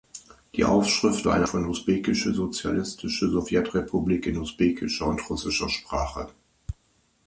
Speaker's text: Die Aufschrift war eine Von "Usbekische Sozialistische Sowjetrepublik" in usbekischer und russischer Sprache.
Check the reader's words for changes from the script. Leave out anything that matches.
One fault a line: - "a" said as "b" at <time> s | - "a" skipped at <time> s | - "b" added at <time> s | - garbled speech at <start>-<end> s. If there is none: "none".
none